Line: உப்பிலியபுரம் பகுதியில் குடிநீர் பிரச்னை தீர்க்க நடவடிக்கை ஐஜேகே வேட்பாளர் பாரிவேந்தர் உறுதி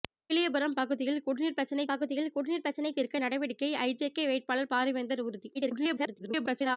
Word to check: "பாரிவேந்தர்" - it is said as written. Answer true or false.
true